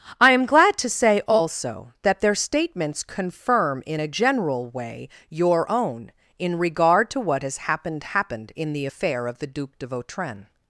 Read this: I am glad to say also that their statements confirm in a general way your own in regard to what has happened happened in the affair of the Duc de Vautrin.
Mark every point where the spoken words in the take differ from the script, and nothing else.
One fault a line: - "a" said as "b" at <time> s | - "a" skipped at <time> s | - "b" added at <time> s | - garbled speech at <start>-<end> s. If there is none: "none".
none